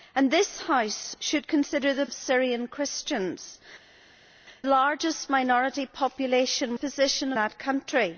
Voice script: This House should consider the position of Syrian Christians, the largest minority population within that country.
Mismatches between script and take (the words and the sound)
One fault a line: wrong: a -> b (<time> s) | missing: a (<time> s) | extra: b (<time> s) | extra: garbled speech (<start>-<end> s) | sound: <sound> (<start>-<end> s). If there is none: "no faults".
missing: position (2.1 s)
missing: the (3.6 s)
wrong: within -> position (6.7 s)